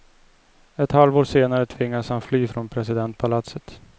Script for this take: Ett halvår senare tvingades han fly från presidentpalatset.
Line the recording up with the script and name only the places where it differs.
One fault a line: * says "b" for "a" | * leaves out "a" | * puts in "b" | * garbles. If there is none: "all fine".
all fine